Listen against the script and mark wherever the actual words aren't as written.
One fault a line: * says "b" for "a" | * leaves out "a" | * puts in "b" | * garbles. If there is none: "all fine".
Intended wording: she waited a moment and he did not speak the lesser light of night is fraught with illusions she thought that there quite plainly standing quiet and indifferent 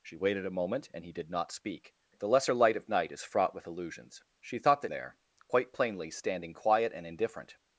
all fine